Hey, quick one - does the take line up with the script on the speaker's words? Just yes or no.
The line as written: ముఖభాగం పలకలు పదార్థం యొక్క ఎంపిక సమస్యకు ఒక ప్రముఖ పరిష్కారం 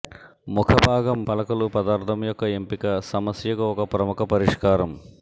yes